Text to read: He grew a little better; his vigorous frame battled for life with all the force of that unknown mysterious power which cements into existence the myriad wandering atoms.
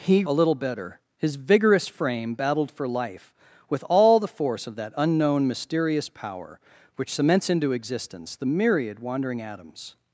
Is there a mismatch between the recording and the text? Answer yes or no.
yes